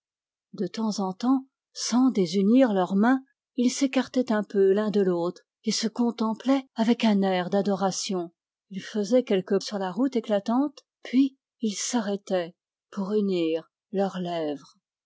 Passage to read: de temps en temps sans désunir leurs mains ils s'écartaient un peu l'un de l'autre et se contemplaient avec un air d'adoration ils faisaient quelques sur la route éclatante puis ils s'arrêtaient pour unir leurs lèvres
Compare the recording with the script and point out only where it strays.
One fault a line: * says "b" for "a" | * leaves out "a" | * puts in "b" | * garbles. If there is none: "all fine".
all fine